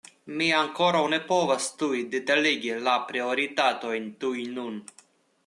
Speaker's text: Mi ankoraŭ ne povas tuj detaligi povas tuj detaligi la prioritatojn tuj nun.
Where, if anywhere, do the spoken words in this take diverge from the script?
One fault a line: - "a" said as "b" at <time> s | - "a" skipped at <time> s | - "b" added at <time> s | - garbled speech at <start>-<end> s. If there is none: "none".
- "povas tuj detaligi" skipped at 2.8 s